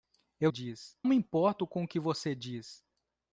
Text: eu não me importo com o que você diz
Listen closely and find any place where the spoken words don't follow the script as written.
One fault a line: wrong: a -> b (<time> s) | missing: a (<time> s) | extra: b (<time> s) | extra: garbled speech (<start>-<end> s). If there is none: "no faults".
wrong: não -> diz (0.5 s)